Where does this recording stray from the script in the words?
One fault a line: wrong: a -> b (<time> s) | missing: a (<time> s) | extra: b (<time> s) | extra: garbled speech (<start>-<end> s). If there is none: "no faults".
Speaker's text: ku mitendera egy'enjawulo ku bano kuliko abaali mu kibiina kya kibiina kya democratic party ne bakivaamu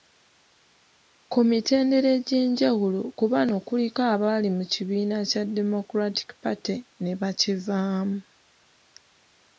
missing: kibiina kya (5.4 s)